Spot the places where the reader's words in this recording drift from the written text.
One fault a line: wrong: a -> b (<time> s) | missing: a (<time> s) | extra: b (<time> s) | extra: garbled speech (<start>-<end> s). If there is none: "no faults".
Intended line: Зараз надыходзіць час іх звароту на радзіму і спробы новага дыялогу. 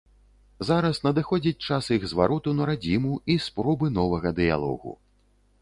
no faults